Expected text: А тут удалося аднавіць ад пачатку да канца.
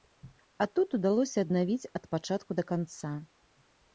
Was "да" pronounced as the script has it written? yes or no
yes